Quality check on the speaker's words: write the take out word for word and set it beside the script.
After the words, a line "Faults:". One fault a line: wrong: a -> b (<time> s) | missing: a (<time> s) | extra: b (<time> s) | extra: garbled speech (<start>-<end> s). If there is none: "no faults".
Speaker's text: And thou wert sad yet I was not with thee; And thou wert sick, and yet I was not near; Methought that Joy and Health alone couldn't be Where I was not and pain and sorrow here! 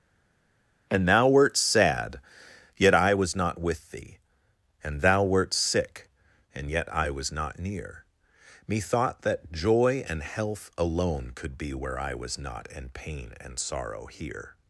And thou wert sad yet I was not with thee; And thou wert sick, and yet I was not near; Methought that Joy and Health alone could be Where I was not and pain and sorrow here!
Faults:
wrong: couldn't -> could (11.3 s)